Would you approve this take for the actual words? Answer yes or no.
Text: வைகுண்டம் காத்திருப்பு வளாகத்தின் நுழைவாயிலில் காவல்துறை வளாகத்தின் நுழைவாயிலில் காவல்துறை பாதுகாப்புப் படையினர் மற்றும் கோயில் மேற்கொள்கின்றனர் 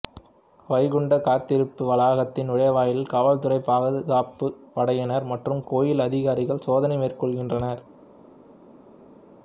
no